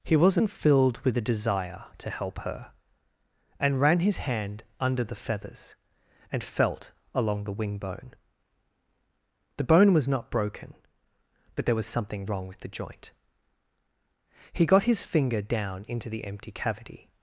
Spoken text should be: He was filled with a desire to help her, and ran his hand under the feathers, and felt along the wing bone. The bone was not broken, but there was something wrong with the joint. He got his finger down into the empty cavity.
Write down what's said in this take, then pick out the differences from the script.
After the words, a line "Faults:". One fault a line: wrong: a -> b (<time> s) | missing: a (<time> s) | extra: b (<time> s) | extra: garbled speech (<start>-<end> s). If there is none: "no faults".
He wasn't filled with a desire to help her, and ran his hand under the feathers, and felt along the wing bone. The bone was not broken, but there was something wrong with the joint. He got his finger down into the empty cavity.
Faults:
wrong: was -> wasn't (0.1 s)